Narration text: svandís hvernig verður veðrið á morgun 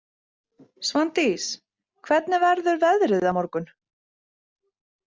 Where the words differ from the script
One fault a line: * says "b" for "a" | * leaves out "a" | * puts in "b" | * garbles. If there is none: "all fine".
all fine